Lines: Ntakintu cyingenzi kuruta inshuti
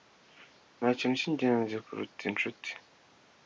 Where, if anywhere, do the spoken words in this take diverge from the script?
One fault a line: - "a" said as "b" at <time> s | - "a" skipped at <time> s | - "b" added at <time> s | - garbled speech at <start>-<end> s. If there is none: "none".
none